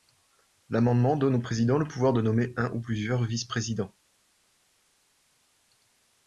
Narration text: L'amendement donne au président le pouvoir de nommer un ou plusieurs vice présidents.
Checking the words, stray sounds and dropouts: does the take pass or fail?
pass